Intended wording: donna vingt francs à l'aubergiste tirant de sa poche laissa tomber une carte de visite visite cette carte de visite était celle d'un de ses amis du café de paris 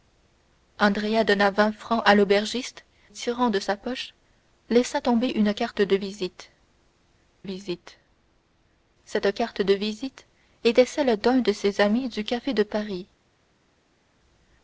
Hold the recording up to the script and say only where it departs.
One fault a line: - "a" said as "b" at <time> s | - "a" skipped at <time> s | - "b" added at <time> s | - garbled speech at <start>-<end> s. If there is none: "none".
none